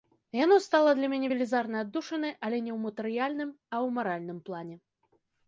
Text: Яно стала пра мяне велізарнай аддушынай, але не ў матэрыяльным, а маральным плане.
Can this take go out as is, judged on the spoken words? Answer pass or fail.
fail